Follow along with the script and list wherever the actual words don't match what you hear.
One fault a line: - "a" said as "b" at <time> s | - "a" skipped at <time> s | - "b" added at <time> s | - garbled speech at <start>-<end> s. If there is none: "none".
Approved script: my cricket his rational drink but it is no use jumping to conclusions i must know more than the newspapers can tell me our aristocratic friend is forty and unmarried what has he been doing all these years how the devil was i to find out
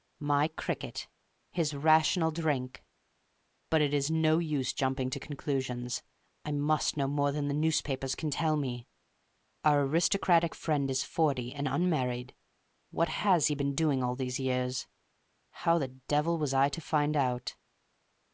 none